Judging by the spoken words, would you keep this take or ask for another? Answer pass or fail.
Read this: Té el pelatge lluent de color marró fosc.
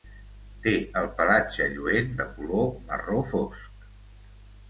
pass